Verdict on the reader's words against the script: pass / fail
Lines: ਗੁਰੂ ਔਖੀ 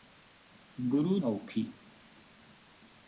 pass